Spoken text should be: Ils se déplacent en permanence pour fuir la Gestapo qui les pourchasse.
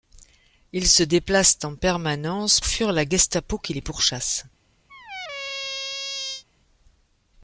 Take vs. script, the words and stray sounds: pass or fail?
fail